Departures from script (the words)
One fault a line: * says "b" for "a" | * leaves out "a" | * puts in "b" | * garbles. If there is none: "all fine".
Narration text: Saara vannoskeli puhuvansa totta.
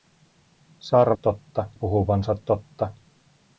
* says "totta" for "vannoskeli"